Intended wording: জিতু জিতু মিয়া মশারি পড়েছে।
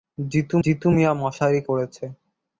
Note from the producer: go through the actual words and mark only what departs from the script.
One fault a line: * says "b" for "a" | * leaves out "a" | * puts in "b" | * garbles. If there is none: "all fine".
all fine